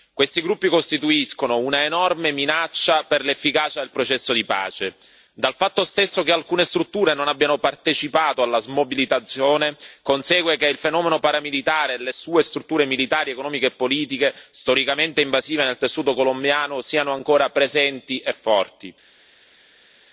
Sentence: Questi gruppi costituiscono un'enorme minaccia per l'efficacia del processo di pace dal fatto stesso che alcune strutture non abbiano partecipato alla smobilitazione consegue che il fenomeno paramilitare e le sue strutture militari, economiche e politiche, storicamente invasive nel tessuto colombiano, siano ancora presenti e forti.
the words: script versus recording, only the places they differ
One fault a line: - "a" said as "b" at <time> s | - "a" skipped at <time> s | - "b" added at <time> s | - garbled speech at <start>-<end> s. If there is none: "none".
none